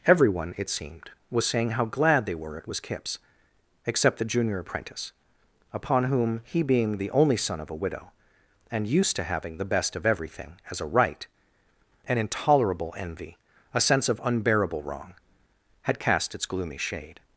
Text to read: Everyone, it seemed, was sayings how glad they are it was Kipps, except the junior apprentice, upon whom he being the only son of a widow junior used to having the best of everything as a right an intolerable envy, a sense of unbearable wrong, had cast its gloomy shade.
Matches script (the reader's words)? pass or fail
fail